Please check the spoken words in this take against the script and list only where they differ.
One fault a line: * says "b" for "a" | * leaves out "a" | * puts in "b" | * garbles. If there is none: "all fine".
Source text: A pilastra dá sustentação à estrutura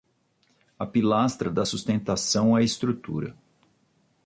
all fine